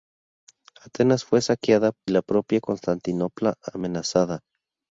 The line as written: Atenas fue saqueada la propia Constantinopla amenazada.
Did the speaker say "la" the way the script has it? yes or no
yes